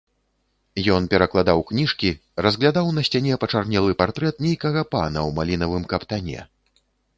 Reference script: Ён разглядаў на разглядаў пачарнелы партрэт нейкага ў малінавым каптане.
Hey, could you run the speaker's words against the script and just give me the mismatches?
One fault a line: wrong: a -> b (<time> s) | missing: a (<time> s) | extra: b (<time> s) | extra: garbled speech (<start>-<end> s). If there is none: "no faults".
extra: перакладаў кніжкі (1.1 s)
wrong: разглядаў -> сцяне (3.1 s)
extra: пана (4.9 s)